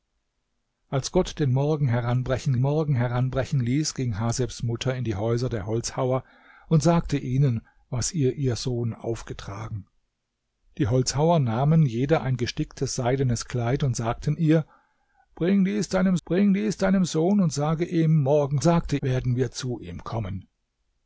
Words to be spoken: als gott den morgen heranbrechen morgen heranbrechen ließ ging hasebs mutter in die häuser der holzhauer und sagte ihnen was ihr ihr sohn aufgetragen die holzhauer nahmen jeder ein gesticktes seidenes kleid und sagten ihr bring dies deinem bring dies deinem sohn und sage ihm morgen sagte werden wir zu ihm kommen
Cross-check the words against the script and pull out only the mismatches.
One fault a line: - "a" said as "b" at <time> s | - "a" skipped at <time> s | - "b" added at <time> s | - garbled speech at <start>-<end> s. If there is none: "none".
none